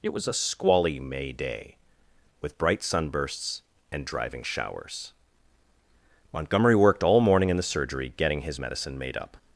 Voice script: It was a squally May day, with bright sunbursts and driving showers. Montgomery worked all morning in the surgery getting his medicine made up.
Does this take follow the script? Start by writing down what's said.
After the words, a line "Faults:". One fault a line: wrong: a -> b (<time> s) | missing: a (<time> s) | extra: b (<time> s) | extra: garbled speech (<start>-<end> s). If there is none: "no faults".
It was a squally May day, with bright sunbursts and driving showers. Montgomery worked all morning in the surgery getting his medicine made up.
Faults:
no faults